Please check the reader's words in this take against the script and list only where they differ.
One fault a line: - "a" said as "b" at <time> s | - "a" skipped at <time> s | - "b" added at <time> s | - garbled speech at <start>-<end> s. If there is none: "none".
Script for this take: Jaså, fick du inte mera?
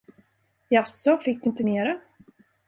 none